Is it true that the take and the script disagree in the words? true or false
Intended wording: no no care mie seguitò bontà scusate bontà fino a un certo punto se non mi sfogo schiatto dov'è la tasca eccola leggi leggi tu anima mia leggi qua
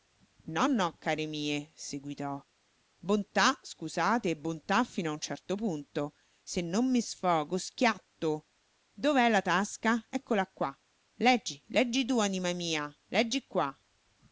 true